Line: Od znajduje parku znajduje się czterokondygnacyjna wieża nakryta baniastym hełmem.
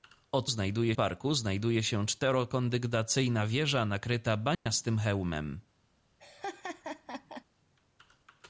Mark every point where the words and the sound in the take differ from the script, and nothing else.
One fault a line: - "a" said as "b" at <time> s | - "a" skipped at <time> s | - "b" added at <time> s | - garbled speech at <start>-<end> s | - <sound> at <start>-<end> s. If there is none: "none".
- dropout at 4.5-4.7 s
- laugh at 6.2-7.4 s